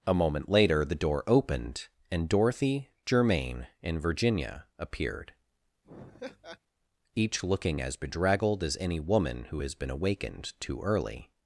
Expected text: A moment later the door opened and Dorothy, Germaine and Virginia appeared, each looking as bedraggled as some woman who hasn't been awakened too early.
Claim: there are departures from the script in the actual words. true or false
true